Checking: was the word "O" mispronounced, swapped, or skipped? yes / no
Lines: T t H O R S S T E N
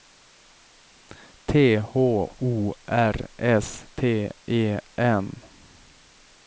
no